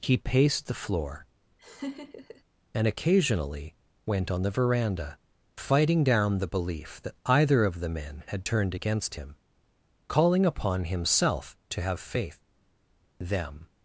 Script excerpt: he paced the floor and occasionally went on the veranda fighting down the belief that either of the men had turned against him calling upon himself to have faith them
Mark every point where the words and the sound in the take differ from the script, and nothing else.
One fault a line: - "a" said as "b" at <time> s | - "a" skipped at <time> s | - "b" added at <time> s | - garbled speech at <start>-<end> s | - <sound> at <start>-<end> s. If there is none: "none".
- laugh at 1.6-2.4 s